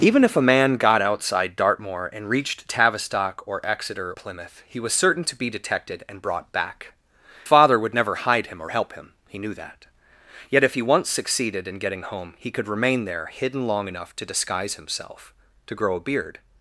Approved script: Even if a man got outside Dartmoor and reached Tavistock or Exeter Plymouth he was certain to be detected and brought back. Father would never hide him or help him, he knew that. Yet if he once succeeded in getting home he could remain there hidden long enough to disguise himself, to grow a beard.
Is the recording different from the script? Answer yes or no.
no